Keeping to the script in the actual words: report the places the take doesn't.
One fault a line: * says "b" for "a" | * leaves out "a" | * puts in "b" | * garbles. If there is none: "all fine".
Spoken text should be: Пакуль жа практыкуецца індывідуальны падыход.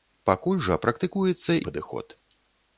* leaves out "індывідуальны"